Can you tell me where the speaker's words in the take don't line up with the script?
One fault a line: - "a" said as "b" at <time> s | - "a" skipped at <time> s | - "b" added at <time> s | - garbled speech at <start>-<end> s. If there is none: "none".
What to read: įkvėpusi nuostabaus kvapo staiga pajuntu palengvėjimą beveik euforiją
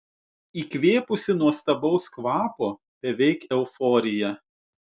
- "staiga pajuntu palengvėjimą" skipped at 2.7 s